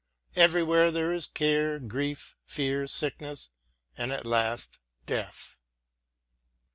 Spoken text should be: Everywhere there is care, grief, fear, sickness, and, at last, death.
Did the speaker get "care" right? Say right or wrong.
right